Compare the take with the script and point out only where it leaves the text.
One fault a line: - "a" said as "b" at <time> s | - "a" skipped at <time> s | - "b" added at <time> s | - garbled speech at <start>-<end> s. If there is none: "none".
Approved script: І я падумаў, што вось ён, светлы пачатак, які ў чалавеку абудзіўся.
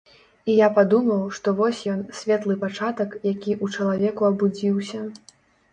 none